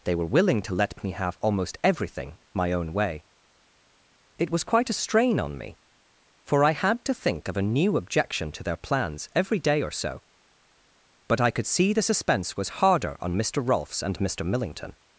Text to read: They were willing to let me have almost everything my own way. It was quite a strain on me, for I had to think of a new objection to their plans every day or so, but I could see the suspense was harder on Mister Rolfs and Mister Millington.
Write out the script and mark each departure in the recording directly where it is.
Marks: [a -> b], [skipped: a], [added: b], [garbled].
They were willing to let me have almost everything my own way. It was quite a strain on me, for I had to think of a new objection to their plans every day or so, but I could see the suspense was harder on Mister Rolfs and Mister Millington.